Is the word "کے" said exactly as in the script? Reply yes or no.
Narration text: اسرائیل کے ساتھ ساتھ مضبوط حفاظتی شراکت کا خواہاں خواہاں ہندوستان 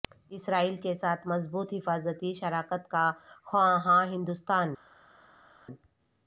yes